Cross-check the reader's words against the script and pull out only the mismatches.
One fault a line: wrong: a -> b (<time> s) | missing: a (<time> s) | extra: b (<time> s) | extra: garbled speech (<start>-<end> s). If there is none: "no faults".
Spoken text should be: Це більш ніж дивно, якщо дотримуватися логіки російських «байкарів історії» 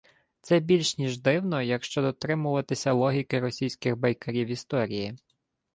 no faults